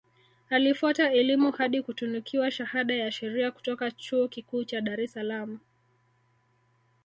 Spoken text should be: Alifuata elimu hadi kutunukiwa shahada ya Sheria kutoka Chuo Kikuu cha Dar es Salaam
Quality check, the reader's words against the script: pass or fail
pass